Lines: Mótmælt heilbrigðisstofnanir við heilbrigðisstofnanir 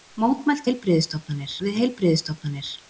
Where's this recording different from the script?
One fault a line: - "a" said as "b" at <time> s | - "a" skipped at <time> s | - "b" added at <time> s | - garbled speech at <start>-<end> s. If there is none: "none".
none